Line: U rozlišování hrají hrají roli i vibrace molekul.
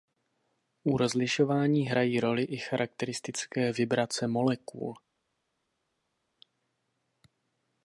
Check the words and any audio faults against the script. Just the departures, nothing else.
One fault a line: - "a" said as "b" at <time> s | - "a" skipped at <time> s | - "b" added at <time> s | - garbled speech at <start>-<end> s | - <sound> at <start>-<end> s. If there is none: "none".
- "hrají" skipped at 2.2 s
- "charakteristické" added at 2.6 s